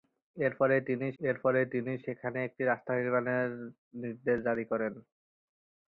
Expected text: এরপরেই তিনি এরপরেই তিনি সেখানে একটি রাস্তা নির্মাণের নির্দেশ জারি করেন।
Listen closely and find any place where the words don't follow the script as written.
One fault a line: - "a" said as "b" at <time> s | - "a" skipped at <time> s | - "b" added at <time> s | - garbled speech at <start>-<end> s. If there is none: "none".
none